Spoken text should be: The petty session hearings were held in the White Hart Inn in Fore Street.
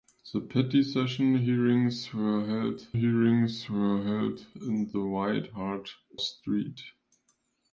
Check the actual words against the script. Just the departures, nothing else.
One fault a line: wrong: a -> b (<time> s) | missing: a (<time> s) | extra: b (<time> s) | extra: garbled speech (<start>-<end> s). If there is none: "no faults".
extra: hearings were held (2.9 s)
missing: Inn in Fore (5.9 s)